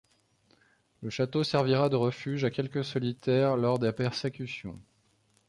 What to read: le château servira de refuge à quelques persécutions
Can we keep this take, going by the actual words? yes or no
no